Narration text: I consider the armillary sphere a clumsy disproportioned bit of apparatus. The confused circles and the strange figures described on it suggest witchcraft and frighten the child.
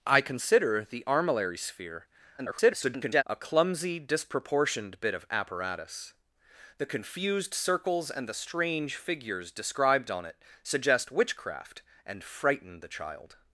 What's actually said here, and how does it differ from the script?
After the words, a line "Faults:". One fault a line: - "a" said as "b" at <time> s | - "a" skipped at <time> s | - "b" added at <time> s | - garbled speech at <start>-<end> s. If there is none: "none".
I consider the armillary sphere [garbled] a clumsy disproportioned bit of apparatus. The confused circles and the strange figures described on it suggest witchcraft and frighten the child.
Faults:
- garbled speech at 2.4-3.2 s